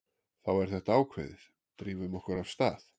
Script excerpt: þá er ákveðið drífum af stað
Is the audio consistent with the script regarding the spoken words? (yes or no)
no